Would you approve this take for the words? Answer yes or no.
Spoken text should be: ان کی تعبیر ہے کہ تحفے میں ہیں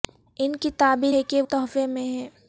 yes